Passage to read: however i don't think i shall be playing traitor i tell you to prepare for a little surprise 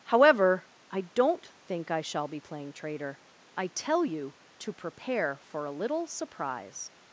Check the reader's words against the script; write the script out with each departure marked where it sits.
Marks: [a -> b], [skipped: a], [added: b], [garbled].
however i don't think i shall be playing traitor i tell you to prepare for a little surprise